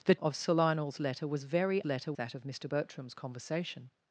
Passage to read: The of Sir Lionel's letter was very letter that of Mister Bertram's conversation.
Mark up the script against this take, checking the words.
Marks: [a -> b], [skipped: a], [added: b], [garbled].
The of Sir Lionel's letter was very letter that of Mister Bertram's conversation.